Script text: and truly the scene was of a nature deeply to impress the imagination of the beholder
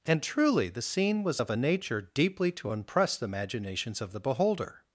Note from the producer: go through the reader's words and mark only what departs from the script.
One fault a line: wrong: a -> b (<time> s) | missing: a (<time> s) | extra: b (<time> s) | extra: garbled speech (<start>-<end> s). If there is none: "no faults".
wrong: imagination -> imaginations (3.3 s)